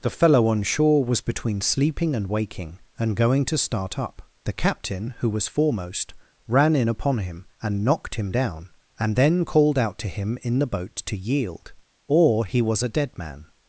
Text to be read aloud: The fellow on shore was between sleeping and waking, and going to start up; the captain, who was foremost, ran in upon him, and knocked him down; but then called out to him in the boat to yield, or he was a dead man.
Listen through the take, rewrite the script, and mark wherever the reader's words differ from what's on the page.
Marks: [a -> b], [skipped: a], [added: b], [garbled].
The fellow on shore was between sleeping and waking, and going to start up; the captain, who was foremost, ran in upon him, and knocked him down; [but -> and] then called out to him in the boat to yield, or he was a dead man.